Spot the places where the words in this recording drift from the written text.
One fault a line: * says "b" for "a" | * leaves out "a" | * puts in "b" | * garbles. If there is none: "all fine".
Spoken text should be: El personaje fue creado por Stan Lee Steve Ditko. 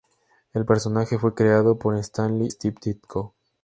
all fine